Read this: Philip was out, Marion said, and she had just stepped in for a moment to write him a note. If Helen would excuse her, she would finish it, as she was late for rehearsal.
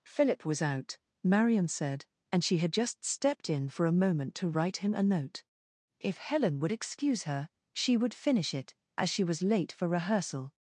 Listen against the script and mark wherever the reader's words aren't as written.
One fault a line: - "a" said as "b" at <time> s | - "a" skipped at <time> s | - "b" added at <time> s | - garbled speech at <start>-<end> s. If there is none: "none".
none